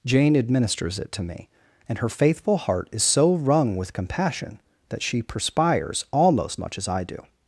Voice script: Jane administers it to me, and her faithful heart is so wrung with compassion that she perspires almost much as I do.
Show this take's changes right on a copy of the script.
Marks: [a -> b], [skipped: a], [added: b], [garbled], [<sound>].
Jane administers it to me, and her faithful heart is so wrung with compassion that she perspires almost much as I do.